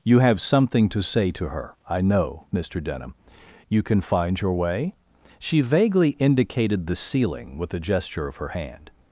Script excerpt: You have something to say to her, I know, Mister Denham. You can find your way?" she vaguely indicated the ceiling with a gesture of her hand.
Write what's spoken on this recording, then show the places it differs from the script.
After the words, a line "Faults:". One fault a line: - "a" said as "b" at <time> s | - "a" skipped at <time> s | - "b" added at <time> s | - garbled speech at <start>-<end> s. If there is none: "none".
You have something to say to her, I know, Mister Denham. You can find your way?" she vaguely indicated the ceiling with a gesture of her hand.
Faults:
none